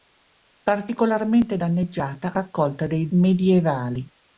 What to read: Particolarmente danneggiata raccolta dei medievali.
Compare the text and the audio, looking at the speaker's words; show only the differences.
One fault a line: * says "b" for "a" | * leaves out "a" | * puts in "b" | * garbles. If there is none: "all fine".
all fine